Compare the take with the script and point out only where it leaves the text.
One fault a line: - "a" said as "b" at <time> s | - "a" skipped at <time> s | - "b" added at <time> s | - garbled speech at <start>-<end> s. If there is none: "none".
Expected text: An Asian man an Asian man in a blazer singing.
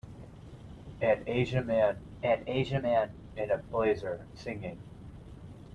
none